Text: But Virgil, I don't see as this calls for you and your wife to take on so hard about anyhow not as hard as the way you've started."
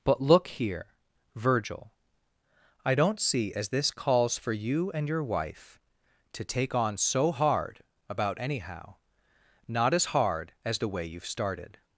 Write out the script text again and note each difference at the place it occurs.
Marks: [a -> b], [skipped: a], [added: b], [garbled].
But [added: look here] Virgil, I don't see as this calls for you and your wife to take on so hard about anyhow not as hard as the way you've started."